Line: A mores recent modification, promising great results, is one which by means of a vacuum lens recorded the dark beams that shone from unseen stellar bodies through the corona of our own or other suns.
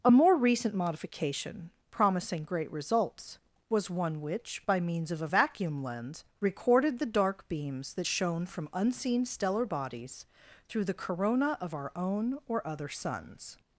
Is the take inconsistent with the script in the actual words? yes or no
yes